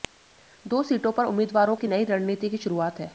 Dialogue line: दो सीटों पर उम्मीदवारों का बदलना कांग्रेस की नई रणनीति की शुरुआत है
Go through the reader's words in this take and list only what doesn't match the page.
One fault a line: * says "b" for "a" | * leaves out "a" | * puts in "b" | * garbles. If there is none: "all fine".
* leaves out "का बदलना कांग्रेस"